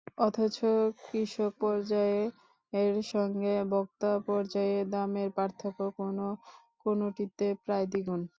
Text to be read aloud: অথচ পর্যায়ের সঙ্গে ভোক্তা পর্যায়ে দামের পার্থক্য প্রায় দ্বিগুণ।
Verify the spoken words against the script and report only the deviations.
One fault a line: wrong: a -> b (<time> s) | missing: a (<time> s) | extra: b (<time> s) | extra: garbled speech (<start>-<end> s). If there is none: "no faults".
extra: কৃষক (1.0 s)
extra: কোনো কোনোটিতে (6.0 s)